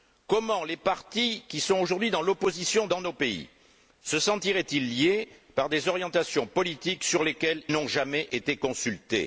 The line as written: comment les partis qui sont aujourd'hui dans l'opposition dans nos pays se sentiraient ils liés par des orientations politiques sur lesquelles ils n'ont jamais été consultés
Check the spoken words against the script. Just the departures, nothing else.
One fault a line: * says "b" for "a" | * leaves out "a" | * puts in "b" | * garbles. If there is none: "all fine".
* leaves out "ils"